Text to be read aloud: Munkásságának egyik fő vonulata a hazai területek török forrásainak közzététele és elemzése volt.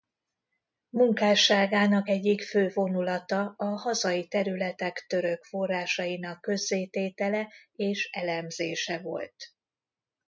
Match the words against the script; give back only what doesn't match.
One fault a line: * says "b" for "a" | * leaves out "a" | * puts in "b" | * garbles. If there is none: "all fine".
all fine